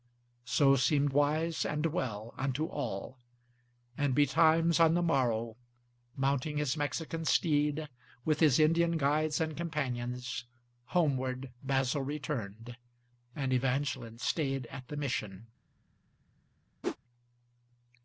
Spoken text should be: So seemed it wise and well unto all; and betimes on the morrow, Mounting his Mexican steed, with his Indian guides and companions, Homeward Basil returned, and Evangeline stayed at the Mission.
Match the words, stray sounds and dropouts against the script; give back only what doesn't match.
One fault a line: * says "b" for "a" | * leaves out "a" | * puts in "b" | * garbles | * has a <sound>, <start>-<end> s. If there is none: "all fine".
* leaves out "it"
* has a whoosh, 16.8-17.0 s